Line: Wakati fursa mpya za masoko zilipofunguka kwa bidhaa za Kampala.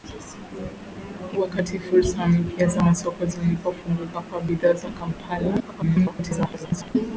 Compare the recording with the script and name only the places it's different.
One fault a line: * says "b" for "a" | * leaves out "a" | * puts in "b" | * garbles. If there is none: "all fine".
* garbles